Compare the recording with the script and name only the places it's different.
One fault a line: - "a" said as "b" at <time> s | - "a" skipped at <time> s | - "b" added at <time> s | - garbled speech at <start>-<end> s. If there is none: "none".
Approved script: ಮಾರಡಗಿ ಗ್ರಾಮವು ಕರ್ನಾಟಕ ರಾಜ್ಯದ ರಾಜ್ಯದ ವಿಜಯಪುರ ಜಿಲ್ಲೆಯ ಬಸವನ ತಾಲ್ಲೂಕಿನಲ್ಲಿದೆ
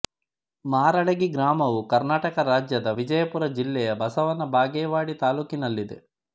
- "ರಾಜ್ಯದ" skipped at 2.9 s
- "ಬಾಗೇವಾಡಿ" added at 4.5 s